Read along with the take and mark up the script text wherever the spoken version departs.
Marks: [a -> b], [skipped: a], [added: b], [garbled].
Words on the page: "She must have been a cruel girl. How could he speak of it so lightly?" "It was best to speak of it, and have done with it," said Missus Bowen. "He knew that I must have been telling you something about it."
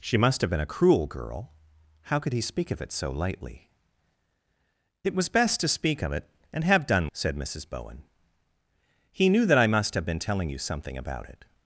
"She must have been a cruel girl. How could he speak of it so lightly?" "It was best to speak of it, and have done [skipped: with it,"] said Missus Bowen. "He knew that I must have been telling you something about it."